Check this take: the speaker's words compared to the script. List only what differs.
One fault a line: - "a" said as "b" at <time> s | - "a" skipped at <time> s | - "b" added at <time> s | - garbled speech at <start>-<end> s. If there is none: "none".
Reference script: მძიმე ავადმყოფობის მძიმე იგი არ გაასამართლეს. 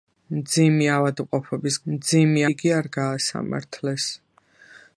none